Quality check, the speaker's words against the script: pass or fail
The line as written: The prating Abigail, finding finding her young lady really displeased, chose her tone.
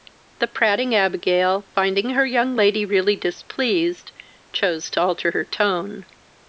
fail